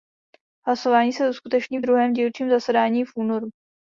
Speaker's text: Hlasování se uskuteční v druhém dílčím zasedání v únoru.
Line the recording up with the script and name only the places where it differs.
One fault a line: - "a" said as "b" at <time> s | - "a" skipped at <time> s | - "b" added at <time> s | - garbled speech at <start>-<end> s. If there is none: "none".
none